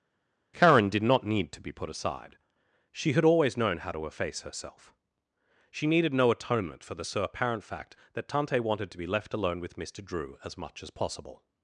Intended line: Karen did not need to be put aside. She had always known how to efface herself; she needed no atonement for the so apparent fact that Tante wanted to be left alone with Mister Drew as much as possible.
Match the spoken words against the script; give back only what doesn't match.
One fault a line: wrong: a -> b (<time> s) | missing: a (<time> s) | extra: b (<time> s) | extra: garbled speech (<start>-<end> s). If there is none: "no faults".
no faults